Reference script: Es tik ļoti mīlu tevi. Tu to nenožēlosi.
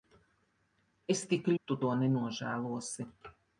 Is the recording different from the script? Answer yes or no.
yes